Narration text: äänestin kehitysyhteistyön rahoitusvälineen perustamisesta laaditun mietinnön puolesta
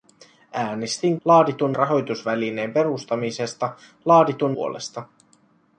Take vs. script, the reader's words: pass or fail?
fail